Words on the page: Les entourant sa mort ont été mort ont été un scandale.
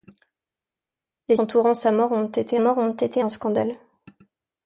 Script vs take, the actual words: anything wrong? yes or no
no